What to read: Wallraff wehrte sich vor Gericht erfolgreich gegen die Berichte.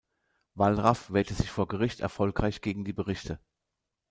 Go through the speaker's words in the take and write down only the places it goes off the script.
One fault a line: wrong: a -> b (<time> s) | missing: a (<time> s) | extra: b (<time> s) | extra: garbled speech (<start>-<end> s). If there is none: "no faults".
no faults